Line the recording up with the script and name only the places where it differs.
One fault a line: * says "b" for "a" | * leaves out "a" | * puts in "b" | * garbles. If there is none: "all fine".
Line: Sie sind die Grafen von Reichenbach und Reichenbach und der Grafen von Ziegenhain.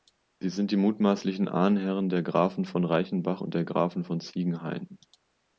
* puts in "mutmaßlichen Ahnherren der"
* leaves out "Reichenbach und"